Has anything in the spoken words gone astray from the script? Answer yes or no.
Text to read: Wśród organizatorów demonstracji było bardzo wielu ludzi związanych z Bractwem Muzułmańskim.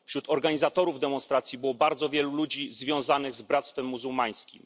no